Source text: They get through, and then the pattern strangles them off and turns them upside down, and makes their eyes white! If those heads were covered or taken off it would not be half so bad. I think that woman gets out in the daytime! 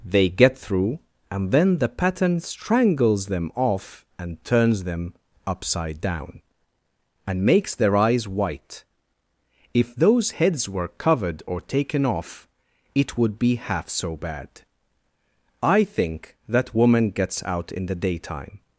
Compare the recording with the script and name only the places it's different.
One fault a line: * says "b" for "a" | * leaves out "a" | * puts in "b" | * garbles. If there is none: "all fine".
* leaves out "not"